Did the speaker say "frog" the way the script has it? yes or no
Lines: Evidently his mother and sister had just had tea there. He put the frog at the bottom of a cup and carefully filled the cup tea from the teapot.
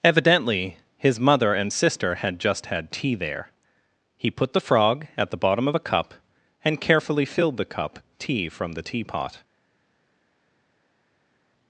yes